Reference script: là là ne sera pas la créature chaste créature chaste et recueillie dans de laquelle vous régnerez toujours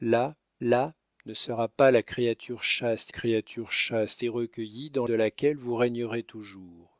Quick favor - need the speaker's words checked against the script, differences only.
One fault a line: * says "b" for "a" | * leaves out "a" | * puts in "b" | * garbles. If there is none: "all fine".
all fine